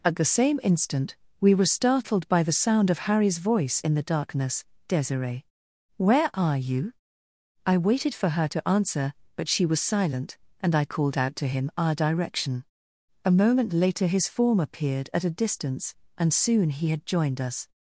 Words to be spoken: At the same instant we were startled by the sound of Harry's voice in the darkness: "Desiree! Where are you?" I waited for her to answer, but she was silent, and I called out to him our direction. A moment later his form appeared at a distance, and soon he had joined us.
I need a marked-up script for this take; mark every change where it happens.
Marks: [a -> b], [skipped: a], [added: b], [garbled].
At the same instant we were startled by the sound of Harry's voice in the darkness: "Desiree! Where are you?" I waited for her to answer, but she was silent, and I called out to him our direction. A moment later his form appeared at a distance, and soon he had joined us.